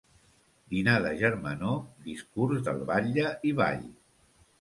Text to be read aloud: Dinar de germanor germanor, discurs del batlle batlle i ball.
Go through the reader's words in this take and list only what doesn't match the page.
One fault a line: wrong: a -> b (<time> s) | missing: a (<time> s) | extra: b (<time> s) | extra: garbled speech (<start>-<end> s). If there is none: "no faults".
missing: germanor (1.8 s)
missing: batlle (3.3 s)